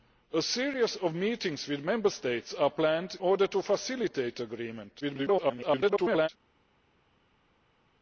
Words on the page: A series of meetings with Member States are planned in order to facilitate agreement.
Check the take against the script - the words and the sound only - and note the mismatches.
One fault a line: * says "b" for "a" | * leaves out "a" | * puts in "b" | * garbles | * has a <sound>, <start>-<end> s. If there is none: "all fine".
* leaves out "in"
* garbles